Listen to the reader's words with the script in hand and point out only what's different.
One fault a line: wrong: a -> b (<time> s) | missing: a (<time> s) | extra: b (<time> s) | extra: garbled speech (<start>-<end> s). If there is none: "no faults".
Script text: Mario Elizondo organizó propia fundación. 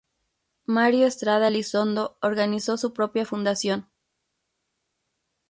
extra: Estrada (1.1 s)
extra: su (2.8 s)